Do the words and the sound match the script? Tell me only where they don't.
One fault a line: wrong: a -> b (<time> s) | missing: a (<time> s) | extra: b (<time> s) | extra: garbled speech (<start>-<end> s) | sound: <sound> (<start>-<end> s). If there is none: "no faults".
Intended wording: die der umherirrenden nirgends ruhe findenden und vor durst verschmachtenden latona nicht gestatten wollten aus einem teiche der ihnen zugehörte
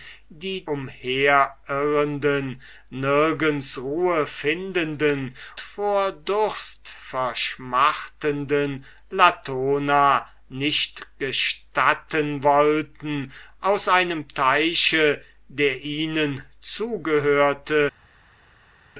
missing: der (0.7 s)
missing: und (5.3 s)